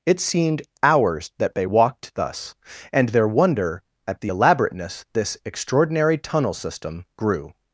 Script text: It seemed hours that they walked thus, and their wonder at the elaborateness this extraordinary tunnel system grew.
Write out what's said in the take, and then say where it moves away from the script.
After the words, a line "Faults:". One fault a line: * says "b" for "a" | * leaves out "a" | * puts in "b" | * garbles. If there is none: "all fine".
It seemed hours that they walked thus, and their wonder at the elaborateness this extraordinary tunnel system grew.
Faults:
all fine